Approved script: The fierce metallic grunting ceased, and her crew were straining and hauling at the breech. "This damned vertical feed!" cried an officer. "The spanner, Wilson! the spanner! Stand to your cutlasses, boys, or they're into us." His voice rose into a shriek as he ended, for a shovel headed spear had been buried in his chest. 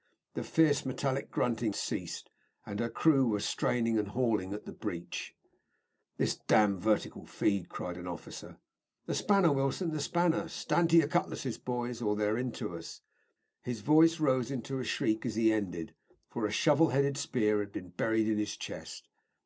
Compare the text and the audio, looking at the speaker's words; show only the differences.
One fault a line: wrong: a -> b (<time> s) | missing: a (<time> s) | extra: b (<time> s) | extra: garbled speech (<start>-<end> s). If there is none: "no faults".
no faults